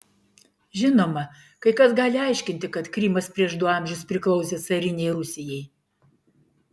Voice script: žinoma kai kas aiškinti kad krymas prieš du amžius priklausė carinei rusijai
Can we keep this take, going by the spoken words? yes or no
no